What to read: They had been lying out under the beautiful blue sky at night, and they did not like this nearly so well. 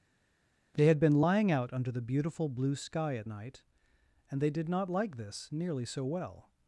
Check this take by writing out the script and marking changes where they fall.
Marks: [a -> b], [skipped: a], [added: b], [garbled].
They had been lying out under the beautiful blue sky at night, and they did not like this nearly so well.